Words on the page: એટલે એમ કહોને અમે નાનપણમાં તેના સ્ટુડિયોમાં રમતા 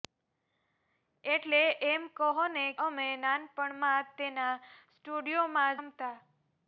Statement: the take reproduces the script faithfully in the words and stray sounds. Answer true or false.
true